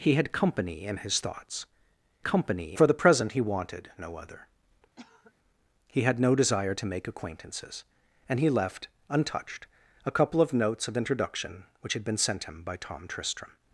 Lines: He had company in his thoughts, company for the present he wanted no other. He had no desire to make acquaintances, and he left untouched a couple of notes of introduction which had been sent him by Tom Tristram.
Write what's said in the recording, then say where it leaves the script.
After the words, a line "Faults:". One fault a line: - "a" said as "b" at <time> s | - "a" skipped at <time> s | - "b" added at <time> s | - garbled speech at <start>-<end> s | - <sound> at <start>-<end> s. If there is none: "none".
He had company in his thoughts, company for the present he wanted no other. He had no desire to make acquaintances, and he left untouched a couple of notes of introduction which had been sent him by Tom Tristram.
Faults:
- cough at 5.0-5.3 s